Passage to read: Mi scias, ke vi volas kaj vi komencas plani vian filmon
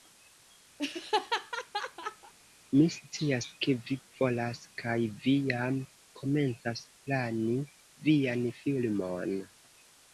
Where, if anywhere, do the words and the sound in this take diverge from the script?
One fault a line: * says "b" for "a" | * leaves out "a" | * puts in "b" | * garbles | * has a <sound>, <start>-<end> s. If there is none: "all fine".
* has a laugh, 0.8-2.3 s
* puts in "jam"